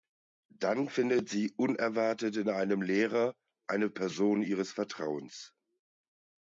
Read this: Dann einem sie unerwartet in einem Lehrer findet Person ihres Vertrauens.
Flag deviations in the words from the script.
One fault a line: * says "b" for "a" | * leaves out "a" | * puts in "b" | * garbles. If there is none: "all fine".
* says "findet" for "einem"
* says "eine" for "findet"